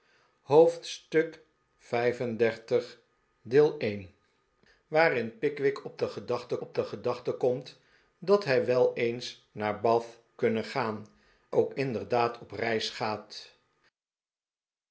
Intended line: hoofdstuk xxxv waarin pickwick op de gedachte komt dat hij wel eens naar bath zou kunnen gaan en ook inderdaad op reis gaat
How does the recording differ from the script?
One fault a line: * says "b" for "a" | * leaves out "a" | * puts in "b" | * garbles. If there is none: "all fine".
* puts in "op de gedachte"
* leaves out "zou"
* leaves out "en"